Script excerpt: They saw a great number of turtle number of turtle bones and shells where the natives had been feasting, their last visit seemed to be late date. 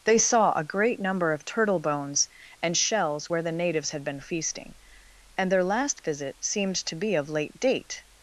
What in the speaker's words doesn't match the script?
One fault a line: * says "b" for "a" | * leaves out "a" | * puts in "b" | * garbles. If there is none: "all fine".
* leaves out "number of turtle"
* puts in "and"
* puts in "of"